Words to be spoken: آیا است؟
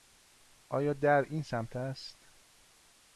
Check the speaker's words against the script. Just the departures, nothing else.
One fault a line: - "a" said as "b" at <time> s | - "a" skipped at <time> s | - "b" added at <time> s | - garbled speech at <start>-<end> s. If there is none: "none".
- "در این سمت" added at 0.9 s